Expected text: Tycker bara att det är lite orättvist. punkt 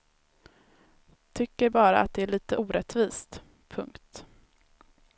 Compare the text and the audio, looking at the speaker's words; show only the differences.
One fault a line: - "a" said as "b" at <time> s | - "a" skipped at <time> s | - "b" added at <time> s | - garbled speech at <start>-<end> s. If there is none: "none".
none